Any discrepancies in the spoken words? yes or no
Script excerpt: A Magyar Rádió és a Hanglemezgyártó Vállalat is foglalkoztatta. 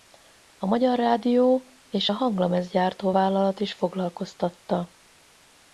no